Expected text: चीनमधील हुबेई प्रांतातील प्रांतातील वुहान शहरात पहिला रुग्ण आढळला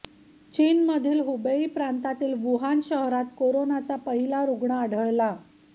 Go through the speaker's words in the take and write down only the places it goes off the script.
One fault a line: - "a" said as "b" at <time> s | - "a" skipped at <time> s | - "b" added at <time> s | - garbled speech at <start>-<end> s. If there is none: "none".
- "प्रांतातील" skipped at 2.3 s
- "कोरोनाचा" added at 3.4 s